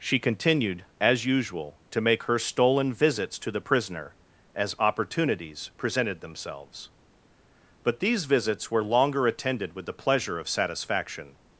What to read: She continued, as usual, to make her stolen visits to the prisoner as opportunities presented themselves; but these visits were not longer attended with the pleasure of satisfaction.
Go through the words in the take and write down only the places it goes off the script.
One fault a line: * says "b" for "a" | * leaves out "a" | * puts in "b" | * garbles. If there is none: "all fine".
* leaves out "not"